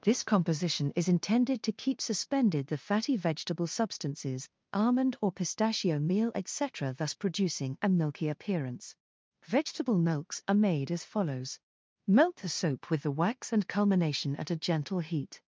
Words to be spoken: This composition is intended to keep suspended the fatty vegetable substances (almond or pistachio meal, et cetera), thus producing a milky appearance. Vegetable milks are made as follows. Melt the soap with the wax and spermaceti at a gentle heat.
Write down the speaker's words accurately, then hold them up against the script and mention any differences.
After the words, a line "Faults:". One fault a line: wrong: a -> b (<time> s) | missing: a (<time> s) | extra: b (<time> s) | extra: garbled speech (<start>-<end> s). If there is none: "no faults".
This composition is intended to keep suspended the fatty vegetable substances (almond or pistachio meal, et cetera), thus producing a milky appearance. Vegetable milks are made as follows. Melt the soap with the wax and culmination at a gentle heat.
Faults:
wrong: spermaceti -> culmination (13.7 s)